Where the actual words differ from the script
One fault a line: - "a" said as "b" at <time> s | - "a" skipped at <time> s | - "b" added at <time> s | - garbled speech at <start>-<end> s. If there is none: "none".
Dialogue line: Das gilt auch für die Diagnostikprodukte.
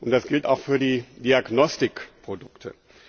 none